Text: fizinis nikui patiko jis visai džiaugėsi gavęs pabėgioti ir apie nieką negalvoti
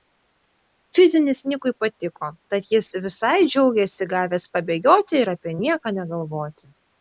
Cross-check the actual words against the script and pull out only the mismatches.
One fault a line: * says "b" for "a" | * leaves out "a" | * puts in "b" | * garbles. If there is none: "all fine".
* puts in "tad"